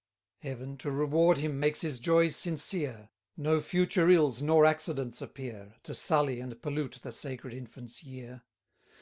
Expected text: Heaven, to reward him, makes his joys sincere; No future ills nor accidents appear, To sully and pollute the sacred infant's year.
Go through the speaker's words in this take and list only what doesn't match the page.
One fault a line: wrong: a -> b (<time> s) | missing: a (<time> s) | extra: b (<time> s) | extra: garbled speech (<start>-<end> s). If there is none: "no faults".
no faults